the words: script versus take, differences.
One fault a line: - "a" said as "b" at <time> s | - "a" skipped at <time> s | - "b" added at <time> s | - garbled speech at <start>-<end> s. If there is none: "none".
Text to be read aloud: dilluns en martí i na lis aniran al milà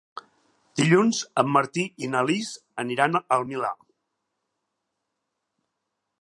none